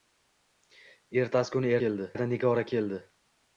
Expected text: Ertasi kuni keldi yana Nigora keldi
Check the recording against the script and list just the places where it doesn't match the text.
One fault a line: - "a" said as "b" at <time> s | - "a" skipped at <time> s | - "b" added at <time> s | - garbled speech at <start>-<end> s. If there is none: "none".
none